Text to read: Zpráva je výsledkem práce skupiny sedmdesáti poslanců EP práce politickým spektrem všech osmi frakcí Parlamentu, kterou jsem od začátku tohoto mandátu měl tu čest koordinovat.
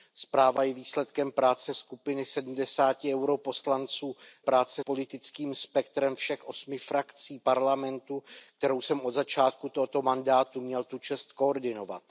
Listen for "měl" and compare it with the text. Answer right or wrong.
right